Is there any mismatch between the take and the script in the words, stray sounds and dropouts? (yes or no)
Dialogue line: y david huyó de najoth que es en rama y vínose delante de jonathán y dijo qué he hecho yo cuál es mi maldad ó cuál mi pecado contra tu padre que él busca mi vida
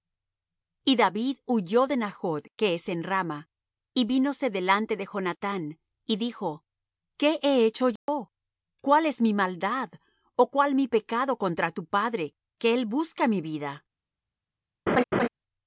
yes